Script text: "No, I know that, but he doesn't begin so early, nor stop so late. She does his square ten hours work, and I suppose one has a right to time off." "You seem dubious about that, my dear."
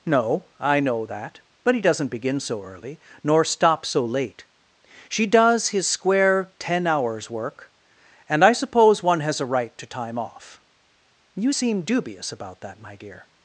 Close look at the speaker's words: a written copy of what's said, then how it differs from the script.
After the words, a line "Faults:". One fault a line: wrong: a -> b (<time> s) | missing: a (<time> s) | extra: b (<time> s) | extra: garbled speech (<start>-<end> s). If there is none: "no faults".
"No, I know that, but he doesn't begin so early, nor stop so late. She does his square ten hours work, and I suppose one has a right to time off." "You seem dubious about that, my dear."
Faults:
no faults